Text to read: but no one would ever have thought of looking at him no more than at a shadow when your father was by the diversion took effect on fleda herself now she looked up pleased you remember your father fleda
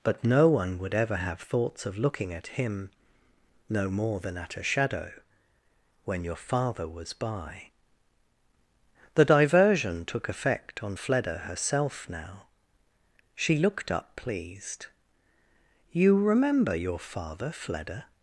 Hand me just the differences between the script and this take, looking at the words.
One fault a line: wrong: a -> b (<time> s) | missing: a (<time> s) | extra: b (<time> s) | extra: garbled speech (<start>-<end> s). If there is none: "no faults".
wrong: thought -> thoughts (1.4 s)